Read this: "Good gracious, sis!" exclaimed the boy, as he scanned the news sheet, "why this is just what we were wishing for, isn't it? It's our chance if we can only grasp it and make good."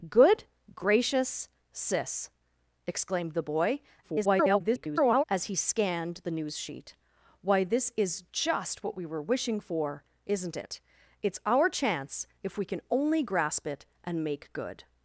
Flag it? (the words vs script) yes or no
yes